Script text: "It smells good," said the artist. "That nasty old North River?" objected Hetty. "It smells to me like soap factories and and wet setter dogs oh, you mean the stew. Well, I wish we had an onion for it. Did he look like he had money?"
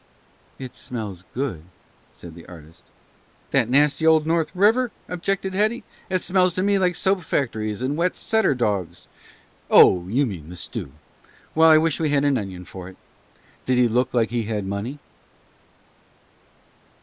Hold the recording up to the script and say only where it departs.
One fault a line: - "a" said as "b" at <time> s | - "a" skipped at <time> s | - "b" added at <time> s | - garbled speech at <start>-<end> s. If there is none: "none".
- "and" skipped at 8.0 s